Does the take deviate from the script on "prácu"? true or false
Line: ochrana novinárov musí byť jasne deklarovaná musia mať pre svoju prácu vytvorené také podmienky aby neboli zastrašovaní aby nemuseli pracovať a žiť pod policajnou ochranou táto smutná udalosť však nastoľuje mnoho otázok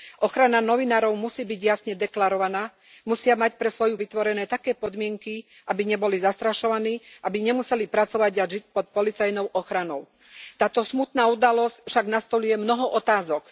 true